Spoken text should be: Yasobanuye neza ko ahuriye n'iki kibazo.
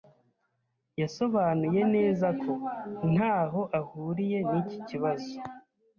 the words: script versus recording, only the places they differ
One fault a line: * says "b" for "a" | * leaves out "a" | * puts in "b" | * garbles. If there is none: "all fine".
* puts in "ntaho"